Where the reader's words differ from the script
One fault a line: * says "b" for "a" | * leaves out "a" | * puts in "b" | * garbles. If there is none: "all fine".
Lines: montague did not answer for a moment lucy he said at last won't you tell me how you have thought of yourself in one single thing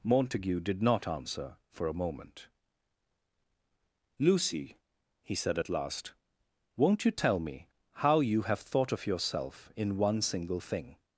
all fine